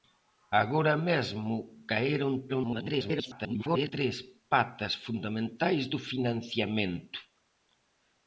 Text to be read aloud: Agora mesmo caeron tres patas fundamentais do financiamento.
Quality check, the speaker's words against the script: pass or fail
fail